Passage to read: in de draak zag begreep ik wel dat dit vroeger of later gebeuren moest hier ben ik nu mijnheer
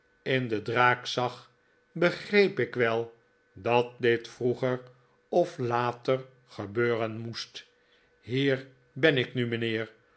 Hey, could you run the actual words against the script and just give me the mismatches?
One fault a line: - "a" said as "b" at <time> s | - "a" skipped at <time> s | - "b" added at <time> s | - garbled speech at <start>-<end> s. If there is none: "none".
none